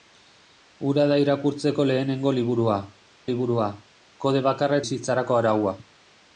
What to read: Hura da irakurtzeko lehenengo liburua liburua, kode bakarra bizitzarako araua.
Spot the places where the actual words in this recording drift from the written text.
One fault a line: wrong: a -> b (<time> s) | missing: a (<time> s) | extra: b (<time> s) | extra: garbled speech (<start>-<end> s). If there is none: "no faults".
no faults